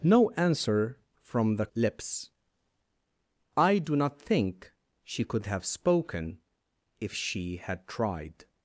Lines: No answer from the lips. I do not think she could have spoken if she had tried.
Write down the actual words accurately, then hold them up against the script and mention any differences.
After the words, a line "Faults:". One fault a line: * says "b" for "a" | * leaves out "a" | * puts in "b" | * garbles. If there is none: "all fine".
No answer from the lips. I do not think she could have spoken if she had tried.
Faults:
all fine